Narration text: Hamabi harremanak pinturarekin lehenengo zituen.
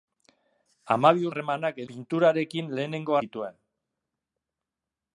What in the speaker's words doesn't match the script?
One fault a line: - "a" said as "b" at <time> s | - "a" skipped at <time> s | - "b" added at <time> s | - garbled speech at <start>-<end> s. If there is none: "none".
none